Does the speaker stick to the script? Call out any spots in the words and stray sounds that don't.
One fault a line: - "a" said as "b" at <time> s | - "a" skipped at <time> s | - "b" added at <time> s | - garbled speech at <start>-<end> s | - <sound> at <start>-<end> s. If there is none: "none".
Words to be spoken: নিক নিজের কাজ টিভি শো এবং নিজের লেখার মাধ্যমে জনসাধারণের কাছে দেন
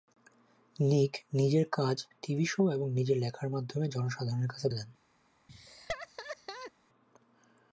- laugh at 5.5-6.7 s